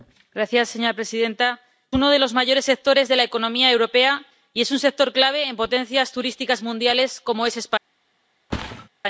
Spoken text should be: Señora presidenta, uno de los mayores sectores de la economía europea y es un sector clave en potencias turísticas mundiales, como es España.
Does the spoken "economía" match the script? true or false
true